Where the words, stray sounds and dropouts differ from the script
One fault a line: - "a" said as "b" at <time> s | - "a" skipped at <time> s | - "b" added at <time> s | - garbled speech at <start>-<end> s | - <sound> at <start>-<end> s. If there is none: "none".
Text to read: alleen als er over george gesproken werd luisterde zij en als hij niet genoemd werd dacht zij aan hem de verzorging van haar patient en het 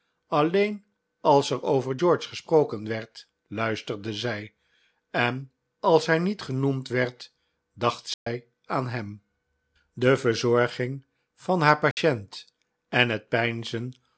- dropout at 8.1-8.3 s
- dropout at 11.9-12.0 s